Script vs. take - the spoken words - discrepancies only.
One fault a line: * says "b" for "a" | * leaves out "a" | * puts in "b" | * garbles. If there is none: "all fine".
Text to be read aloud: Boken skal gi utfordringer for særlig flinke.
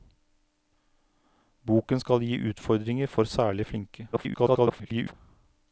* garbles